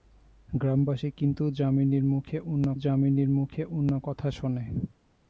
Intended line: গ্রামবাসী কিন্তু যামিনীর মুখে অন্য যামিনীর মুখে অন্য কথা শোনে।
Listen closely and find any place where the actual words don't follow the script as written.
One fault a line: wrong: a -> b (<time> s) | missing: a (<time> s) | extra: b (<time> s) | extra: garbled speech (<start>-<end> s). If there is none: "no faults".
no faults